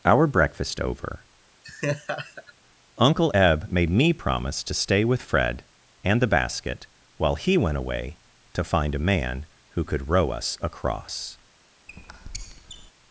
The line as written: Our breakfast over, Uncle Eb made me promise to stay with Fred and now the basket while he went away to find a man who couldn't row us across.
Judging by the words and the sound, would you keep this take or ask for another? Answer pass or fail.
fail